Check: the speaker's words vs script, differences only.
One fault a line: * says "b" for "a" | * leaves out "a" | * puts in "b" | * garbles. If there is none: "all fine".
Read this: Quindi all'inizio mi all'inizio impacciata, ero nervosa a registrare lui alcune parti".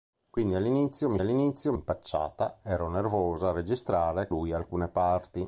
all fine